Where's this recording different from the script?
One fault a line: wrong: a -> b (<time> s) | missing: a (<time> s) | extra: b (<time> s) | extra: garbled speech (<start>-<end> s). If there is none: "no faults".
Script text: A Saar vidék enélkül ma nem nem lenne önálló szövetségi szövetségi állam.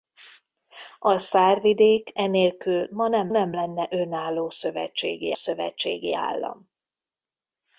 no faults